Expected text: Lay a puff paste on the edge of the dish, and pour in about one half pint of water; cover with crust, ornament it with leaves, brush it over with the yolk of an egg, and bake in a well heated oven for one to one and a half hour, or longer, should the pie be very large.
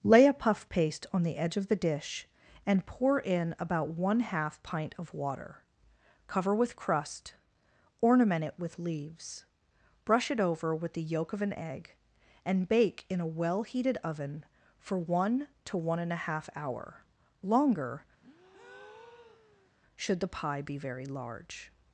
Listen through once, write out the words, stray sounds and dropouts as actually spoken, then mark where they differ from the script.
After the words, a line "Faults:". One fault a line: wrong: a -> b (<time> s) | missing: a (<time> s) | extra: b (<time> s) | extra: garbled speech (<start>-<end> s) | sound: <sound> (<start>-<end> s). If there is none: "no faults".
Lay a puff paste on the edge of the dish, and pour in about one half pint of water; cover with crust, ornament it with leaves, brush it over with the yolk of an egg, and bake in a well heated oven for one to one and a half hour, longer, should the pie be very large.
Faults:
missing: or (17.0 s)
sound: breath (18.2-19.7 s)